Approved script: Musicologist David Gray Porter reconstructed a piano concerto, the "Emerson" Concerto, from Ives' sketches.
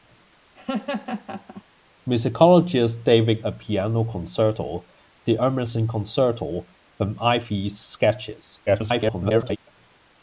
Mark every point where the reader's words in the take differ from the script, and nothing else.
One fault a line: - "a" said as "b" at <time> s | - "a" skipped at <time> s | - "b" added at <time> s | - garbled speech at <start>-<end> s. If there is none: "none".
- "Gray Porter reconstructed" skipped at 3.4 s
- garbled speech at 8.7-9.6 s